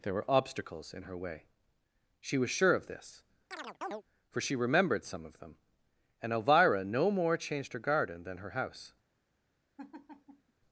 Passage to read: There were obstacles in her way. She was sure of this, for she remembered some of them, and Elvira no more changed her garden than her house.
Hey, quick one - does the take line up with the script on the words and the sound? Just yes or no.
no